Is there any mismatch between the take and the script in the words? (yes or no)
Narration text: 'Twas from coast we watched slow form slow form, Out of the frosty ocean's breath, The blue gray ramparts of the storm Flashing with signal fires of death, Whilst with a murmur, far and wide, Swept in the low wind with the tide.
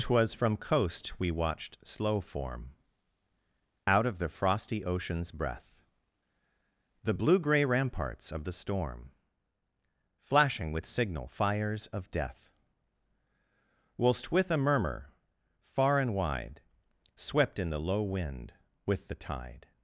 yes